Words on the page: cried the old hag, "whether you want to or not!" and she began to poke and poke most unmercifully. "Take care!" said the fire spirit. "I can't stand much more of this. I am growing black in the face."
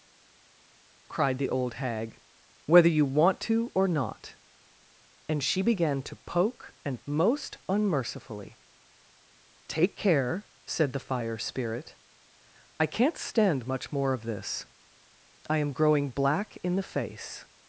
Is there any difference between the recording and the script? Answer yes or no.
yes